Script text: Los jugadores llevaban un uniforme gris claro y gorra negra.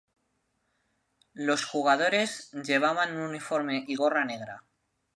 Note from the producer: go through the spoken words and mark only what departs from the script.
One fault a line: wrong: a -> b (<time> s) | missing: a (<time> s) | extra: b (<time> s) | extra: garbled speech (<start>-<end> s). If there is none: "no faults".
missing: gris claro (3.9 s)